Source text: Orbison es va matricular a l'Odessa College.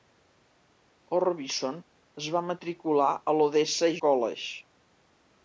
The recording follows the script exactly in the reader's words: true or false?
true